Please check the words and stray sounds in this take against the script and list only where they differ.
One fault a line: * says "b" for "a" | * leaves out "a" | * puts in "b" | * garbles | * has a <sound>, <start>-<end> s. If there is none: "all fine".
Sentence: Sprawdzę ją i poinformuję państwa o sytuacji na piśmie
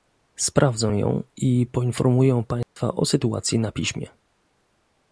* has a dropout, 2.6-2.8 s